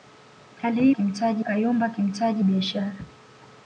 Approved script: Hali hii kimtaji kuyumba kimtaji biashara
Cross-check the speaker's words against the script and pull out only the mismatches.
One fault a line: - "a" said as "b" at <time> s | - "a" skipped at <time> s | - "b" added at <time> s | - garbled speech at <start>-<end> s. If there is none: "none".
none